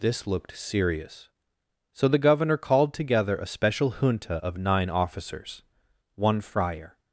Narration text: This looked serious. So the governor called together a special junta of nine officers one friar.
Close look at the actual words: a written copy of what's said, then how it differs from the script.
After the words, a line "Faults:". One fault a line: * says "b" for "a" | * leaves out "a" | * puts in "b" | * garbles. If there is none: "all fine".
This looked serious. So the governor called together a special junta of nine officers one friar.
Faults:
all fine